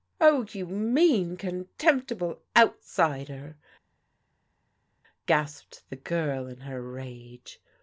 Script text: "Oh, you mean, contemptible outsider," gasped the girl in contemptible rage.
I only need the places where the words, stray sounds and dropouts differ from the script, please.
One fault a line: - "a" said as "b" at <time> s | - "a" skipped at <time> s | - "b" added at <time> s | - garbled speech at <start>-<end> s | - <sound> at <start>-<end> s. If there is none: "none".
- "contemptible" said as "her" at 6.6 s